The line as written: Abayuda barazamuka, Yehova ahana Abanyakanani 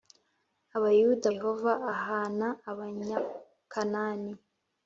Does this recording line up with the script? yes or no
no